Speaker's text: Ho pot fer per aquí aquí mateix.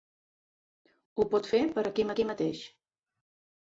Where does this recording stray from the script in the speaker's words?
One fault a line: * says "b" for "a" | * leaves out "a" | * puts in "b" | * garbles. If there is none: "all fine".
all fine